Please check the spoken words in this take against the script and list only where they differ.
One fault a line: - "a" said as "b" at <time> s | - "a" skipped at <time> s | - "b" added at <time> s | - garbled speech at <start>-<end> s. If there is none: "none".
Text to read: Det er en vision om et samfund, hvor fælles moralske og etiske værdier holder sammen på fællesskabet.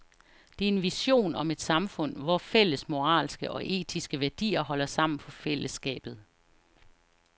none